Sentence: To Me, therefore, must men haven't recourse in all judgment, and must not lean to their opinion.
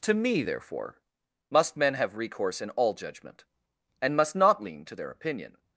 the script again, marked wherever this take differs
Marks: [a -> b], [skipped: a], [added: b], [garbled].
To Me, therefore, must men [haven't -> have] recourse in all judgment, and must not lean to their opinion.